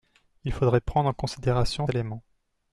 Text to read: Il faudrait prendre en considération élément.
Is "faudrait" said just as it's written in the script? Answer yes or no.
yes